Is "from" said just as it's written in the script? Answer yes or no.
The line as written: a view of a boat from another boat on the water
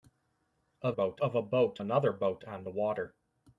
no